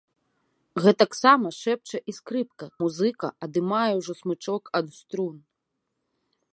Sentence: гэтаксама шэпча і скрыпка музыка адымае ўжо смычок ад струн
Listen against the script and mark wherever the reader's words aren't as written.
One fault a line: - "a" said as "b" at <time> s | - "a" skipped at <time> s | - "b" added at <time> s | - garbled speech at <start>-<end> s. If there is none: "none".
none